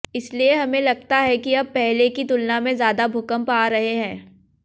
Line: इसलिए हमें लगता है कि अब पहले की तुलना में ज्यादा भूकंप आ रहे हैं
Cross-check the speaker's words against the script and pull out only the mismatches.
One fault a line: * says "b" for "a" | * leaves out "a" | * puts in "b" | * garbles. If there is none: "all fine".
all fine